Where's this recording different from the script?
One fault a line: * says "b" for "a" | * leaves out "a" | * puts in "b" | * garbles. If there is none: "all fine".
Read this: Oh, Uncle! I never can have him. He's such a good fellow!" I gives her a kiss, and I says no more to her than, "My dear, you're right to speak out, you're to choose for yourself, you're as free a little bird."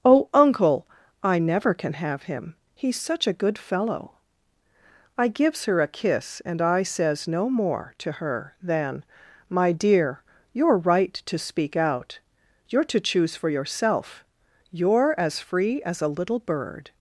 * puts in "as"